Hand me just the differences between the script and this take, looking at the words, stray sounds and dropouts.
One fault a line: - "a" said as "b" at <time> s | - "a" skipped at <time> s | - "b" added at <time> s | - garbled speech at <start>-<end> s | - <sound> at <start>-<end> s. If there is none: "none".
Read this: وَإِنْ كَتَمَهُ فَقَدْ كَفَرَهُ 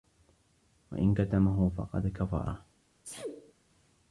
- sneeze at 3.0-3.5 s